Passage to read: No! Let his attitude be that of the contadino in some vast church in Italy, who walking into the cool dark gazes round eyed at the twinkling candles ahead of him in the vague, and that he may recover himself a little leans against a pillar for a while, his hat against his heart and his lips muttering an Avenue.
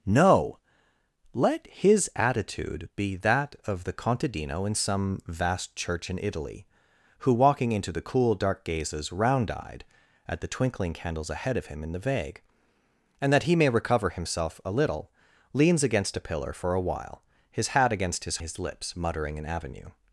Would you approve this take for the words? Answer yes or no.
no